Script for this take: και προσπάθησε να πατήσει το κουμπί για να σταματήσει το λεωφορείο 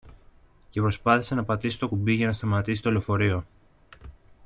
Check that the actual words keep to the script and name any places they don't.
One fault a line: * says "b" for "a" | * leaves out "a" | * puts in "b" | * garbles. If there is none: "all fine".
all fine